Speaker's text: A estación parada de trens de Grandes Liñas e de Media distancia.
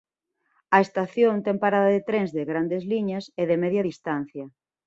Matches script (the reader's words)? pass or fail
fail